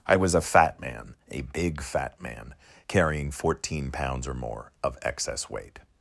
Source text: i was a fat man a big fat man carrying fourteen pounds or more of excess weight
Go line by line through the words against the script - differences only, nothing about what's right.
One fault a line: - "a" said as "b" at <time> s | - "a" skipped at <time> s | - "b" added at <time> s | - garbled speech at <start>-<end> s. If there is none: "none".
none